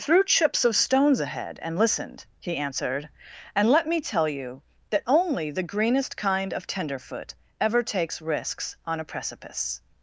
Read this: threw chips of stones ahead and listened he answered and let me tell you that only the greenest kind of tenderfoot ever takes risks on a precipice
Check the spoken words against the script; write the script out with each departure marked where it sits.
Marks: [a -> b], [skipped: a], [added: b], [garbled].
threw chips of stones ahead and listened he answered and let me tell you that only the greenest kind of tenderfoot ever takes risks on a precipice